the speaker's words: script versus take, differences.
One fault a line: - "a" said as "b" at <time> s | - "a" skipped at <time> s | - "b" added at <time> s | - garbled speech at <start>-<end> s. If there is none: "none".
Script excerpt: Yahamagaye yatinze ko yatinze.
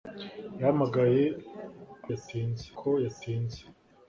none